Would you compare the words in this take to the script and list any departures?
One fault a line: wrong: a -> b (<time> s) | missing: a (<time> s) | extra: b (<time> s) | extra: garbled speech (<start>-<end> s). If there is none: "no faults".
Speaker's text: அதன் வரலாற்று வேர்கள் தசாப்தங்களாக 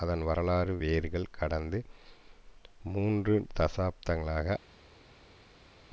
extra: கடந்த மூன்று (1.3 s)